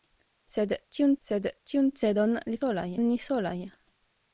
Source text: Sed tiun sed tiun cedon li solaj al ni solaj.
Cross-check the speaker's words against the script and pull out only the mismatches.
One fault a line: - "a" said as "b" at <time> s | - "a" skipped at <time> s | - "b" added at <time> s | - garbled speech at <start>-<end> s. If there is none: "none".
none